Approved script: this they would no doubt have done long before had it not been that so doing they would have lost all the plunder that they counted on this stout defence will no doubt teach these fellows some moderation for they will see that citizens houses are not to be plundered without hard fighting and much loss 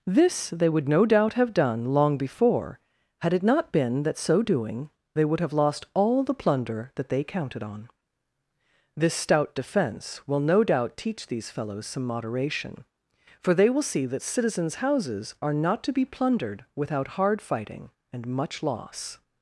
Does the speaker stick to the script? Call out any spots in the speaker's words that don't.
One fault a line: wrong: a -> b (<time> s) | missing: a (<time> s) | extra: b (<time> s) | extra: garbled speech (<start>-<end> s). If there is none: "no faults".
no faults